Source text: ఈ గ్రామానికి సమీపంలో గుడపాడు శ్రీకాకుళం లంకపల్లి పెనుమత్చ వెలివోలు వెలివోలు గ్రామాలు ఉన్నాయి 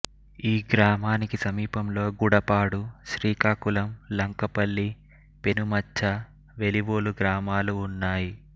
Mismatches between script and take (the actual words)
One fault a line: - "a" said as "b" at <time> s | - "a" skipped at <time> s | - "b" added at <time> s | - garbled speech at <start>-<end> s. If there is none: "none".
- "వెలివోలు" skipped at 7.1 s